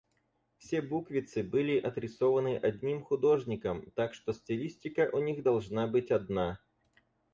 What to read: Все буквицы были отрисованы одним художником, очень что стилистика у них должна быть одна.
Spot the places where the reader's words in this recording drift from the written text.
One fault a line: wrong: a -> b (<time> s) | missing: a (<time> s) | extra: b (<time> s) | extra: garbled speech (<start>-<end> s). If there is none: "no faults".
wrong: очень -> так (3.9 s)